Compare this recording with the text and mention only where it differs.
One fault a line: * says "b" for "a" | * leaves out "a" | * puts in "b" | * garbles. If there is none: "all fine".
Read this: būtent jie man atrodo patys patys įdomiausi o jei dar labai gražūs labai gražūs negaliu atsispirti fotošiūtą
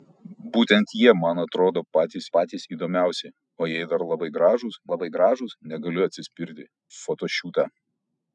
all fine